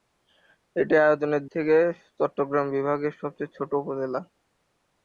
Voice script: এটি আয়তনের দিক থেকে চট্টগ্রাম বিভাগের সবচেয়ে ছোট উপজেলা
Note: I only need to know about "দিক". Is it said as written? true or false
false